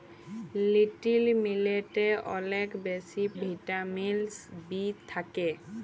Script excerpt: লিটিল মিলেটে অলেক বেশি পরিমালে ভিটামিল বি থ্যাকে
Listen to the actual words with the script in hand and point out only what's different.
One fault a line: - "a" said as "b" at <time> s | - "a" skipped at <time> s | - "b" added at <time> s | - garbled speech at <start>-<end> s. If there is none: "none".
- "পরিমালে" skipped at 3.2 s